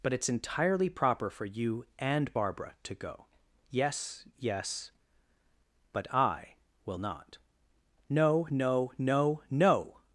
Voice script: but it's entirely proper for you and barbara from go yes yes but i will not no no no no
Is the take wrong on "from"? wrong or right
wrong